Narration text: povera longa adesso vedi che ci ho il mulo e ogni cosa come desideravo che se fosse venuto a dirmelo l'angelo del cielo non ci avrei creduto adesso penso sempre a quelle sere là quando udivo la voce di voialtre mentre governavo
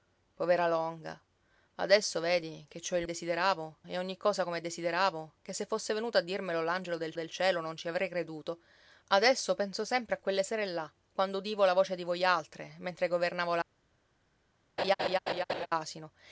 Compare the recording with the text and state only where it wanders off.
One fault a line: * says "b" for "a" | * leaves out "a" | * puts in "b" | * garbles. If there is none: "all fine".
* says "desideravo" for "mulo"
* puts in "del"